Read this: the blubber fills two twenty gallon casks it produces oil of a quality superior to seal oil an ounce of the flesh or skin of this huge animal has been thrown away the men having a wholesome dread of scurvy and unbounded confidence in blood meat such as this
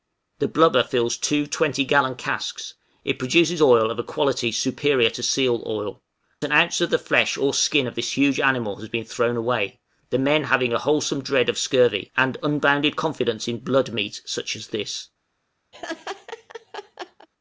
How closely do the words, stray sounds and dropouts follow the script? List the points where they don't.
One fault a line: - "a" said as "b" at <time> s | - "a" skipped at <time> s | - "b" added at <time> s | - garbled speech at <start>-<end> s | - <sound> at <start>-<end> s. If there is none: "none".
- laugh at 15.7-17.3 s